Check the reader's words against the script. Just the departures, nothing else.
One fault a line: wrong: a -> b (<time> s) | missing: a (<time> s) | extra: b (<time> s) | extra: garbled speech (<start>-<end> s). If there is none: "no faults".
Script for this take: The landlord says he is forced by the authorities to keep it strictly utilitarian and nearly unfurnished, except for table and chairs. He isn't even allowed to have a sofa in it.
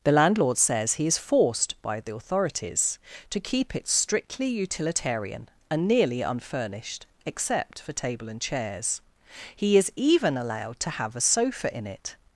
wrong: isn't -> is (9.8 s)